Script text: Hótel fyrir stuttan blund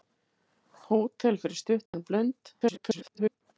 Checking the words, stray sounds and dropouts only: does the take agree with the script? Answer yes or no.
no